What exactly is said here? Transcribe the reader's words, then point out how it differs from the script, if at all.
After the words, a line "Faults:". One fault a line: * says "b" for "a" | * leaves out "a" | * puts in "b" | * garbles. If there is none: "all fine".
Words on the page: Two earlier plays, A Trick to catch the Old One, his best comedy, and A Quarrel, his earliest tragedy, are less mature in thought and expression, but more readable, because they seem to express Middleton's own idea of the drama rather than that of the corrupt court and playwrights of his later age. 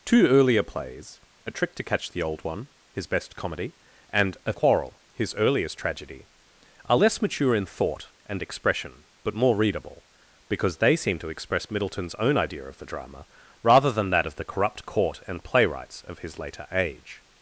Two earlier plays, A Trick to catch the Old One, his best comedy, and A Quarrel, his earliest tragedy, are less mature in thought and expression, but more readable, because they seem to express Middleton's own idea of the drama rather than that of the corrupt court and playwrights of his later age.
Faults:
all fine